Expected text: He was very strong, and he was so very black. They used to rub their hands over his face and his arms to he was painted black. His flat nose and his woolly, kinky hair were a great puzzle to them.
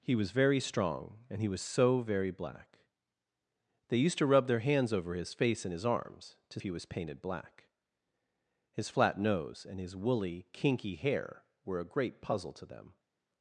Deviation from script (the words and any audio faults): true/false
false